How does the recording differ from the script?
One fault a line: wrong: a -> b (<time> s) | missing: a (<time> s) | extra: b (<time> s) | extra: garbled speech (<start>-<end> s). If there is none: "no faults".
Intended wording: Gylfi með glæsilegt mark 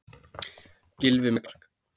missing: glæsilegt (1.4 s)